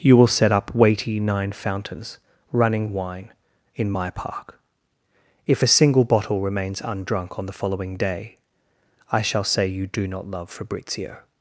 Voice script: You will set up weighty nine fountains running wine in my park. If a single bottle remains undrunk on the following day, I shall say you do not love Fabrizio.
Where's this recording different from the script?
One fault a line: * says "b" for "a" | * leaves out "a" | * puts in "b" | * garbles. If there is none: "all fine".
all fine